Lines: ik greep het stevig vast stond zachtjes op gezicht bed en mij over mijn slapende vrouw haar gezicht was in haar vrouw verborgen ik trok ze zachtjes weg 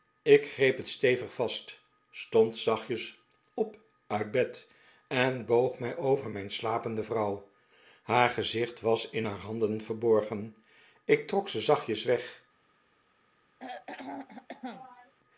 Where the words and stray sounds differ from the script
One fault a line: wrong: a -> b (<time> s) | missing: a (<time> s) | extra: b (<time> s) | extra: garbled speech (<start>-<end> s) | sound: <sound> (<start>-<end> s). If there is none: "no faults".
wrong: gezicht -> uit (4.1 s)
extra: boog (5.5 s)
wrong: vrouw -> handen (9.4 s)
sound: throat clearing (13.6-15.1 s)